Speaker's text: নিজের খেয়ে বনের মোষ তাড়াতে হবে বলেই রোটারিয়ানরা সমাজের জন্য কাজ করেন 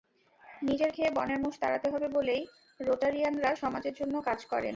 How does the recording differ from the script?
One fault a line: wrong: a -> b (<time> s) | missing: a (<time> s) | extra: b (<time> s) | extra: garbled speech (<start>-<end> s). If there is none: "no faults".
no faults